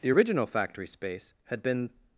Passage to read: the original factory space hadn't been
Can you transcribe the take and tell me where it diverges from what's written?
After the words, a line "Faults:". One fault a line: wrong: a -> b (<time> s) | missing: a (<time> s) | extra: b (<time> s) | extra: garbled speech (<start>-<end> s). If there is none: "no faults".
the original factory space had been
Faults:
wrong: hadn't -> had (1.4 s)